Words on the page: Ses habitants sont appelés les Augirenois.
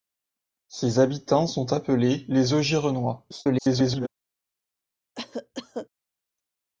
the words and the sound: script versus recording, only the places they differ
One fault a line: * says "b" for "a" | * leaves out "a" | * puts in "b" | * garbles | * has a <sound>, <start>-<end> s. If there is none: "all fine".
* garbles
* has a cough, 5.1-5.9 s